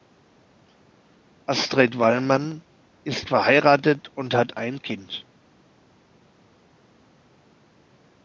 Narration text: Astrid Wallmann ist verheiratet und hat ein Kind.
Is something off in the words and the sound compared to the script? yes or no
no